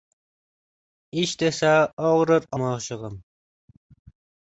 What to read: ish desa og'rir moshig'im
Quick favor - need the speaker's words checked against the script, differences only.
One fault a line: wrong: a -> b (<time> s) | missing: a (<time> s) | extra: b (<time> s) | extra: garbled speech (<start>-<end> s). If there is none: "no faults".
no faults